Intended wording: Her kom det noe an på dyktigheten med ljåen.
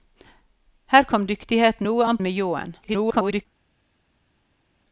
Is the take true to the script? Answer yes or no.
no